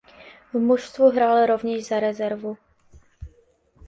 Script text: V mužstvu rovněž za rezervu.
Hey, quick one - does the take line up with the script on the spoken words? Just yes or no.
no